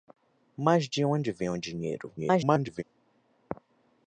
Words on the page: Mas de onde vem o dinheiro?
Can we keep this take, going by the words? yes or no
no